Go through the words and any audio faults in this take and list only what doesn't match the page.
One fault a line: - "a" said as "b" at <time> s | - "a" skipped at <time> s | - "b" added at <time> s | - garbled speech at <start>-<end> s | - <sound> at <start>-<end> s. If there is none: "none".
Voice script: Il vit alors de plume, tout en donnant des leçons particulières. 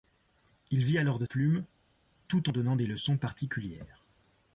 none